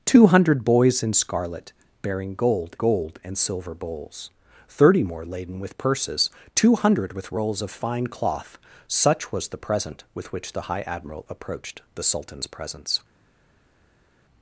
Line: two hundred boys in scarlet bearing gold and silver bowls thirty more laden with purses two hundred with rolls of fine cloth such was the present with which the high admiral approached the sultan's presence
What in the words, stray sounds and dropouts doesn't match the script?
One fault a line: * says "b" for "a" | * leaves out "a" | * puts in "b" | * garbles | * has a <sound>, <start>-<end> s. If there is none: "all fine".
* puts in "gold"